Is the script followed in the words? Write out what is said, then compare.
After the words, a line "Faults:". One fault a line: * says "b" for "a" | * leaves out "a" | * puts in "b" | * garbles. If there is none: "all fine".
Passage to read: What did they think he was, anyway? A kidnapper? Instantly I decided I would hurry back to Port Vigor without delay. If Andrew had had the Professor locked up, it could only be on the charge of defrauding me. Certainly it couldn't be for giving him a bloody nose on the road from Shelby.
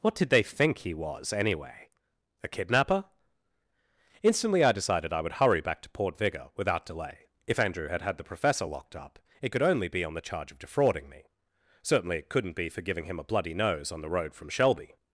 What did they think he was, anyway? A kidnapper? Instantly I decided I would hurry back to Port Vigor without delay. If Andrew had had the Professor locked up, it could only be on the charge of defrauding me. Certainly it couldn't be for giving him a bloody nose on the road from Shelby.
Faults:
all fine